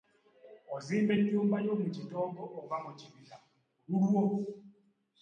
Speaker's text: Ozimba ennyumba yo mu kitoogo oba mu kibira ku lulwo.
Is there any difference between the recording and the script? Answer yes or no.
no